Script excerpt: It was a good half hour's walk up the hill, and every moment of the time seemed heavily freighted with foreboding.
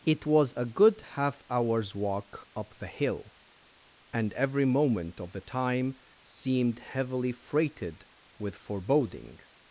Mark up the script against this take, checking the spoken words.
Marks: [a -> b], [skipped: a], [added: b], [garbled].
It was a good half hour's walk up the hill, and every moment of the time seemed heavily freighted with foreboding.